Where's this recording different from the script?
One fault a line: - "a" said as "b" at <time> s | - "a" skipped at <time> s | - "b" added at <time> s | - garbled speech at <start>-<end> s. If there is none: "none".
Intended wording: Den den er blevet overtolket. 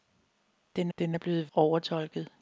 none